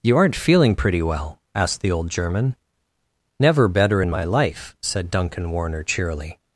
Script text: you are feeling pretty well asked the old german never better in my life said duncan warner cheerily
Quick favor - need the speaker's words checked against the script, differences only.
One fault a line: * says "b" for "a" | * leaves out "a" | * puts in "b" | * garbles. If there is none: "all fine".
* says "aren't" for "are"